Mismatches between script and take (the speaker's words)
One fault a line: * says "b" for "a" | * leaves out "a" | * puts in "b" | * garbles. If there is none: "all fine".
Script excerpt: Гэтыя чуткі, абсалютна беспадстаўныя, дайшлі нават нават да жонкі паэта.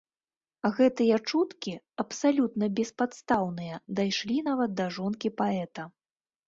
* leaves out "нават"